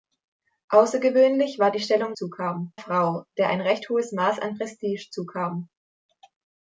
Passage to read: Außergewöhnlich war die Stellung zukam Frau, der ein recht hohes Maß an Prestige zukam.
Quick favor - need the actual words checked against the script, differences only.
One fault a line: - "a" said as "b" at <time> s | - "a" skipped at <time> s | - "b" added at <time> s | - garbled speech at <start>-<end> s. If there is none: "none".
none